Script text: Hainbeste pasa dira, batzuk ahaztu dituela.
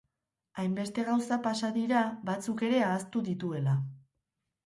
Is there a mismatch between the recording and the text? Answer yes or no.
yes